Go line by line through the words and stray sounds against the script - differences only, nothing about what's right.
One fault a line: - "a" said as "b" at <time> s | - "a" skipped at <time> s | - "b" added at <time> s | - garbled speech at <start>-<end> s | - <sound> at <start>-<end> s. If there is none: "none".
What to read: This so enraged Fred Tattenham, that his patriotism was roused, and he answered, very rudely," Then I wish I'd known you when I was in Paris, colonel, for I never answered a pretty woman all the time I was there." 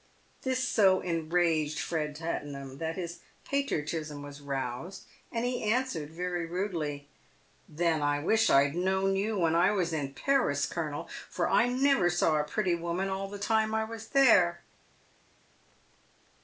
- "answered" said as "saw" at 12.1 s